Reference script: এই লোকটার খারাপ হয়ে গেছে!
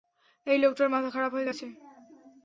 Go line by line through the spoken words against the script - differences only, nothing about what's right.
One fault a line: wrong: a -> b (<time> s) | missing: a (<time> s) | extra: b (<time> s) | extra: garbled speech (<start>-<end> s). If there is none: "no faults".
extra: মাথা (0.9 s)